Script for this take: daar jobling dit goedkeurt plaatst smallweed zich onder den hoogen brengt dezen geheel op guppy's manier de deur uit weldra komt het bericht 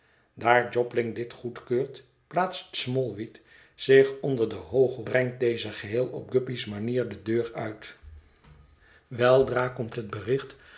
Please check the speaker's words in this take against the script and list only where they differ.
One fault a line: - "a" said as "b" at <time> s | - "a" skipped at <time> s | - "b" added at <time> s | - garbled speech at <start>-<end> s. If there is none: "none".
none